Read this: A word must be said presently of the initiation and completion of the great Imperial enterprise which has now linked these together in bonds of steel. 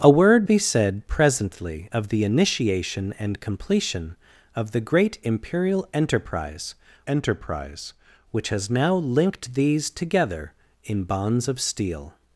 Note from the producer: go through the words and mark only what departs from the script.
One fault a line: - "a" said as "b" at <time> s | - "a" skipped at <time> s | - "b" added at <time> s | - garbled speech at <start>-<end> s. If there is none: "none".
- "must" skipped at 0.5 s
- "enterprise" added at 7.0 s